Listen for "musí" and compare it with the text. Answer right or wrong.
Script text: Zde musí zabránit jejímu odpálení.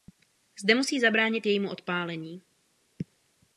right